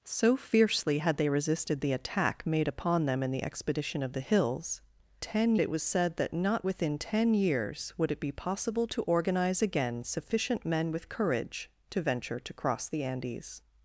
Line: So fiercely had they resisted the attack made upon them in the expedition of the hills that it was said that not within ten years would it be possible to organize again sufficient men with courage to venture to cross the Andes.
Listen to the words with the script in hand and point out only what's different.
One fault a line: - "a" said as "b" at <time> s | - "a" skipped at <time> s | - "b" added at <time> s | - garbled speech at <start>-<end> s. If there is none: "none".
- "that" said as "ten" at 5.2 s